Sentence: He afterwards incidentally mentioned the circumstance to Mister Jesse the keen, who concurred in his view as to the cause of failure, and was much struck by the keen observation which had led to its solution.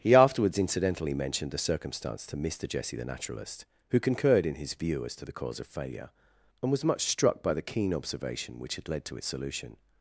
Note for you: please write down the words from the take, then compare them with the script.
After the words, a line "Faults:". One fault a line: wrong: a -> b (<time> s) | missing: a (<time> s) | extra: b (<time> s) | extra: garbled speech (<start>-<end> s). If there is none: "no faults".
He afterwards incidentally mentioned the circumstance to Mister Jesse the naturalist, who concurred in his view as to the cause of failure, and was much struck by the keen observation which had led to its solution.
Faults:
wrong: keen -> naturalist (3.0 s)